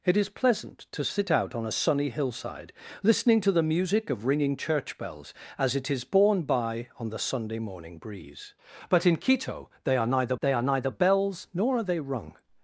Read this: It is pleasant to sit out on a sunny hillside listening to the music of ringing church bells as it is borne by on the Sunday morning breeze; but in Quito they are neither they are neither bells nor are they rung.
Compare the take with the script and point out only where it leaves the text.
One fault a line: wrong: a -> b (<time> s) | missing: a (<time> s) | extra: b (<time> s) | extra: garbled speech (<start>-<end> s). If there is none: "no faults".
no faults